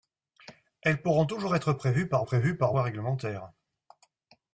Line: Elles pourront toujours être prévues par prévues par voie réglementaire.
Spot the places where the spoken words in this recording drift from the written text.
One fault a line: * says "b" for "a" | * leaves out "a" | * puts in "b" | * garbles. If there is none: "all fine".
all fine